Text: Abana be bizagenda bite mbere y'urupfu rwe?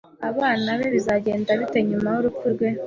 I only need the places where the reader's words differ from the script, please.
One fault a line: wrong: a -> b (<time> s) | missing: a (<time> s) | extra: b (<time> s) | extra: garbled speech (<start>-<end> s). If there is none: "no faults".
wrong: mbere -> nyuma (1.9 s)